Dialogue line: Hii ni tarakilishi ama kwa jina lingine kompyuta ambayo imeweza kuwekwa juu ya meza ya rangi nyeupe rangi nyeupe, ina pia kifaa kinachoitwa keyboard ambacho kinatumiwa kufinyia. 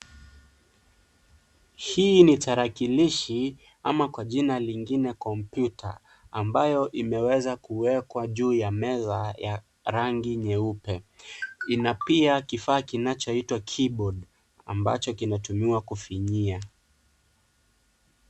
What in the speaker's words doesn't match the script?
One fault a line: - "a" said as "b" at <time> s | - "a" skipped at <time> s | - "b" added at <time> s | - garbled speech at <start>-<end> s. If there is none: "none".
- "rangi nyeupe" skipped at 11.0 s